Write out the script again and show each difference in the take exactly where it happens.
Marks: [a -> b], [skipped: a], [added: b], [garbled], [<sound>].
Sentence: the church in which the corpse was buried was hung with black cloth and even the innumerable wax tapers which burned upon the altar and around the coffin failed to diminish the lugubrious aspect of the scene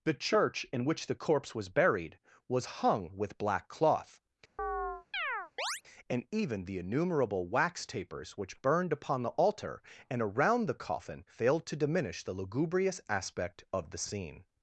the church in which the corpse was buried was hung with black cloth [chirp] and even the innumerable wax tapers which burned upon the altar and around the coffin failed to diminish the lugubrious aspect of the scene